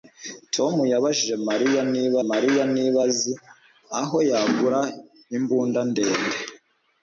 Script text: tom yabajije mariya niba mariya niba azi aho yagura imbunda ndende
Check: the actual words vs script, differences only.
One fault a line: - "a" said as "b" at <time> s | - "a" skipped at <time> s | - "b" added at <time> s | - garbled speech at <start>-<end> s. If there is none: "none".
none